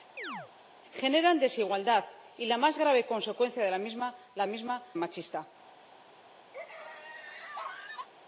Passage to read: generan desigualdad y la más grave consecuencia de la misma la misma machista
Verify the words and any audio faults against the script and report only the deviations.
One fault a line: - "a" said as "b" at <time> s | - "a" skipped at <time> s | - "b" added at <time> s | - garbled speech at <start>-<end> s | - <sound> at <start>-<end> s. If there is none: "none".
- chirp at 0.2-0.5 s
- laugh at 6.5-8.1 s